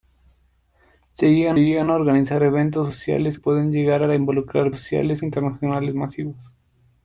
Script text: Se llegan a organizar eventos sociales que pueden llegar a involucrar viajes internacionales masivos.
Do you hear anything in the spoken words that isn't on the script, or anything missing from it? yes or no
yes